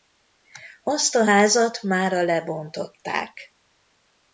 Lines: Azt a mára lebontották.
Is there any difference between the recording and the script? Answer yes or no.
yes